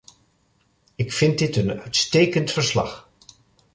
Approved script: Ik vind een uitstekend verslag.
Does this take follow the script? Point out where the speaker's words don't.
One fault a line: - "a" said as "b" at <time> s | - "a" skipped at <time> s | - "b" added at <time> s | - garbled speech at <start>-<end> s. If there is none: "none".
- "dit" added at 1.4 s